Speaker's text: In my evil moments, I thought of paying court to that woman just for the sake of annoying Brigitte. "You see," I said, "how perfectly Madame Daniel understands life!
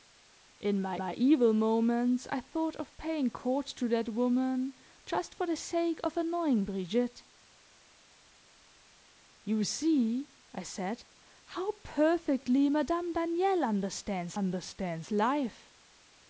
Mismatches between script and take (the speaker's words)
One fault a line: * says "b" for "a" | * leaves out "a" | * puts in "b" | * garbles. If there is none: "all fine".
* puts in "my"
* puts in "understands"